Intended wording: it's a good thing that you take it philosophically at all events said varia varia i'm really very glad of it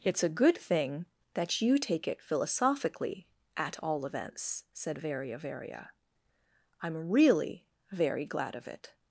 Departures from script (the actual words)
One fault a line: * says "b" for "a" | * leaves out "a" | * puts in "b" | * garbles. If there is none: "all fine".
all fine